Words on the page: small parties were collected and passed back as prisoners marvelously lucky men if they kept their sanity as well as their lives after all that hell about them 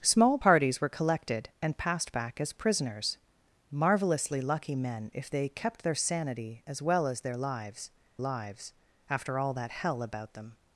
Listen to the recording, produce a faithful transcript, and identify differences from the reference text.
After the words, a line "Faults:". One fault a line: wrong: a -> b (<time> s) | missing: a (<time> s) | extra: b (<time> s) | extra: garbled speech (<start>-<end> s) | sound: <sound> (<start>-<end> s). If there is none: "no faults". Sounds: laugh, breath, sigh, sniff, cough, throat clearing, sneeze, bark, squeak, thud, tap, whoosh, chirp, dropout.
small parties were collected and passed back as prisoners marvelously lucky men if they kept their sanity as well as their lives lives after all that hell about them
Faults:
extra: lives (8.2 s)